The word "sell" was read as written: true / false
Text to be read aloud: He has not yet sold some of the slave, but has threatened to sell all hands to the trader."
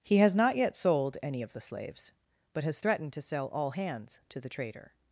true